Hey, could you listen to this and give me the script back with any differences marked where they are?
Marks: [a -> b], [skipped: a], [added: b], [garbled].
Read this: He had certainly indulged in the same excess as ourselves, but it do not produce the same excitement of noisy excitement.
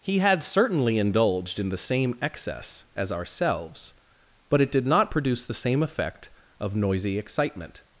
He had certainly indulged in the same excess as ourselves, but it [do -> did] not produce the same [excitement -> effect] of noisy excitement.